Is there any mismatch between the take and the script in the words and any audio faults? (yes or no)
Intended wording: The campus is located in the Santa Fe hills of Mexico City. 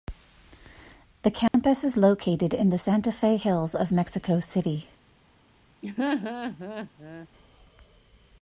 yes